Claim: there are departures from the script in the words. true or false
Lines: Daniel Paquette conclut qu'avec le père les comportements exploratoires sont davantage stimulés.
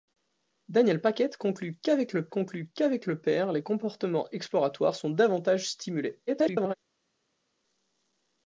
true